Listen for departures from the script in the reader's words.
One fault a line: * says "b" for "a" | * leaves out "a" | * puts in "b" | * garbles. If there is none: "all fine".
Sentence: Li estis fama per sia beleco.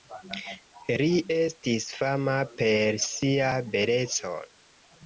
all fine